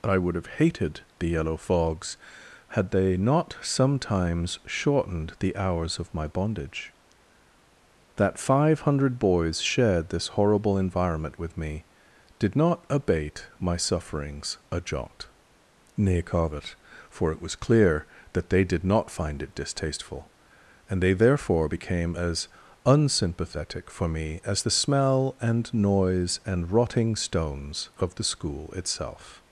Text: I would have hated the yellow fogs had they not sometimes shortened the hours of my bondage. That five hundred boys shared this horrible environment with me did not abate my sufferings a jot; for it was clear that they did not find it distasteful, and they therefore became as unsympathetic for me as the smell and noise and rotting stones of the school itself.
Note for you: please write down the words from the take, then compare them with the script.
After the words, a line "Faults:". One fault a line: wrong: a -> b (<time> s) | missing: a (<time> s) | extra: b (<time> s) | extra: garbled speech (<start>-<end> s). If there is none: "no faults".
I would have hated the yellow fogs had they not sometimes shortened the hours of my bondage. That five hundred boys shared this horrible environment with me did not abate my sufferings a jot; nay covet for it was clear that they did not find it distasteful, and they therefore became as unsympathetic for me as the smell and noise and rotting stones of the school itself.
Faults:
extra: nay covet (16.0 s)